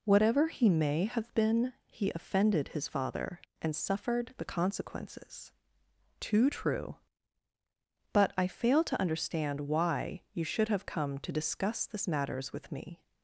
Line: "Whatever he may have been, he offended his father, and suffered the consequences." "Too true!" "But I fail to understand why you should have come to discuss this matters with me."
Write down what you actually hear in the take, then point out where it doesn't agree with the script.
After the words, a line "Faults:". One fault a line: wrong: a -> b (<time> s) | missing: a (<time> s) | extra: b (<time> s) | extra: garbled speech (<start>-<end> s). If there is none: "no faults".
"Whatever he may have been, he offended his father, and suffered the consequences." "Too true!" "But I fail to understand why you should have come to discuss this matters with me."
Faults:
no faults